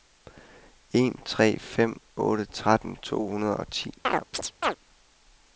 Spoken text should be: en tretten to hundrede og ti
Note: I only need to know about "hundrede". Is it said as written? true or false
true